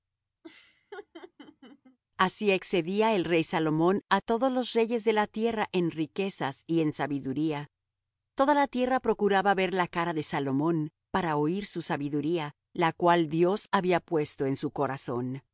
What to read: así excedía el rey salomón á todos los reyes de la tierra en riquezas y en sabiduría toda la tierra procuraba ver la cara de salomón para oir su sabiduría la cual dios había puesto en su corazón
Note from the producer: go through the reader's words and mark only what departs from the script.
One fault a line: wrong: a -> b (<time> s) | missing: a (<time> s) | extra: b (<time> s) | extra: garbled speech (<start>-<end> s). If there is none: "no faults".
no faults